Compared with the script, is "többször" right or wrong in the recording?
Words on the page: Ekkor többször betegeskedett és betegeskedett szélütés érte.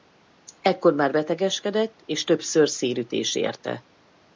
wrong